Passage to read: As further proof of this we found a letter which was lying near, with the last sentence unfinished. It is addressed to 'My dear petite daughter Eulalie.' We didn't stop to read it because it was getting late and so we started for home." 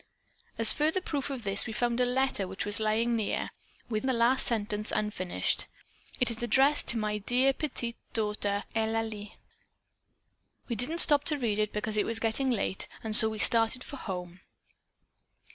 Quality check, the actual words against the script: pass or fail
pass